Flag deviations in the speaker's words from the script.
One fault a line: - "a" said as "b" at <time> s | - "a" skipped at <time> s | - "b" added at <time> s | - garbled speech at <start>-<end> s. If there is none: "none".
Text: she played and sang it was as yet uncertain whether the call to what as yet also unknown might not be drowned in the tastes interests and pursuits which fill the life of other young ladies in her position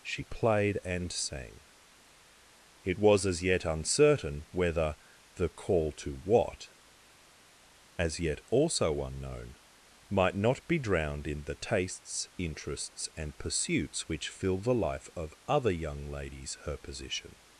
- "in" skipped at 16.6 s